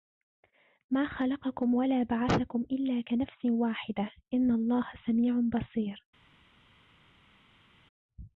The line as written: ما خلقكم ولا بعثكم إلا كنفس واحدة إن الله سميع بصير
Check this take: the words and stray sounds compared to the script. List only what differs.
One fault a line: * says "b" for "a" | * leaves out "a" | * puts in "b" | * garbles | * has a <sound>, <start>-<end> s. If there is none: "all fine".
all fine